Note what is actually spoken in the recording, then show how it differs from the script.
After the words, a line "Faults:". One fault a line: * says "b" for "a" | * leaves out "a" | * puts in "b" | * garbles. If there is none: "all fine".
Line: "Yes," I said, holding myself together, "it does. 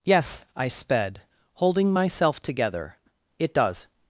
"Yes," I sped, holding myself together, "it does.
Faults:
* says "sped" for "said"